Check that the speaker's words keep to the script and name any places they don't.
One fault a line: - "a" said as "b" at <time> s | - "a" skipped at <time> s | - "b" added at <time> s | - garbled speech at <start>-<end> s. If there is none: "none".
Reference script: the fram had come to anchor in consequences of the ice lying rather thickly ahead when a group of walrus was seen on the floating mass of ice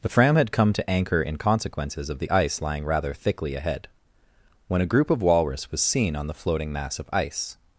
none